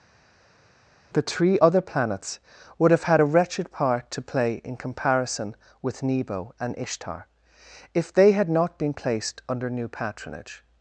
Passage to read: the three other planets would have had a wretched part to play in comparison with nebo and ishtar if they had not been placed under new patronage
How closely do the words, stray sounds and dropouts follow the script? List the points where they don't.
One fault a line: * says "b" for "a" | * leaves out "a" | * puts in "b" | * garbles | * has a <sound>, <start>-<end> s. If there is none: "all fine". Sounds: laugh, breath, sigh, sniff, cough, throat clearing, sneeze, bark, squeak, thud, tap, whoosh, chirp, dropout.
all fine